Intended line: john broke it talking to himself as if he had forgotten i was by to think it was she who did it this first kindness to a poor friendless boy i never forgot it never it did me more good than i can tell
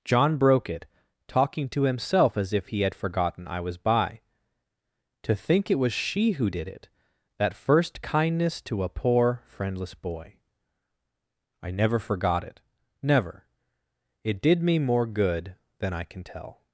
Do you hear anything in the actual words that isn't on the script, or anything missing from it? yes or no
yes